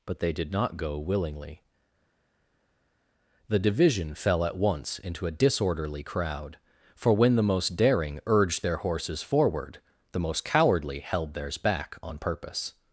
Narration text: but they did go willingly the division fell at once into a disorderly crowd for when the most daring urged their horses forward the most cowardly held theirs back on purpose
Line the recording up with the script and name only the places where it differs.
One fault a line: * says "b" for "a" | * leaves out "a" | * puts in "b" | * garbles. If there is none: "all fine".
* puts in "not"